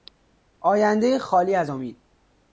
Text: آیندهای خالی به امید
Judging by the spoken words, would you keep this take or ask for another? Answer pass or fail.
fail